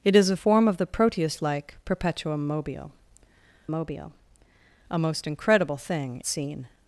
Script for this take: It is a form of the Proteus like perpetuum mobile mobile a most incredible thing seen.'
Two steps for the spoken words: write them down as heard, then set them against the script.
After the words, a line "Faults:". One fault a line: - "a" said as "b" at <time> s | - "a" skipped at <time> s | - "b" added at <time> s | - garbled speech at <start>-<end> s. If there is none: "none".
It is a form of the Proteus like perpetuum mobile mobile a most incredible thing seen.'
Faults:
none